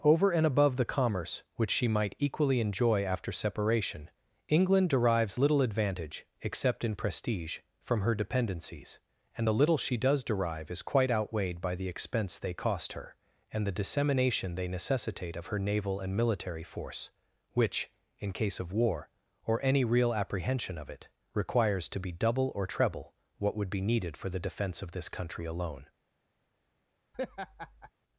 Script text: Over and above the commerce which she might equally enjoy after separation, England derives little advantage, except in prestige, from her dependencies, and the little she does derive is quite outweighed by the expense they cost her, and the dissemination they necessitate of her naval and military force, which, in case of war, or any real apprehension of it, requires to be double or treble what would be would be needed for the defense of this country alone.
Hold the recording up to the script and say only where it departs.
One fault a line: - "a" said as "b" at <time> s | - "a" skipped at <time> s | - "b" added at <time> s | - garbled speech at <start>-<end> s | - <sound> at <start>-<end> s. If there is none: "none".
- "would be" skipped at 23.8 s
- laugh at 27.1-27.9 s